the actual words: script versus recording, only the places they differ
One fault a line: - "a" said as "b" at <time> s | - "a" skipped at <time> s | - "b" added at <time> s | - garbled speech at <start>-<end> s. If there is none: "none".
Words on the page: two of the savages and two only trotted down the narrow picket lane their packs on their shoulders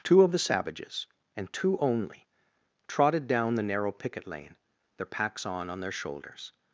- "on" added at 5.7 s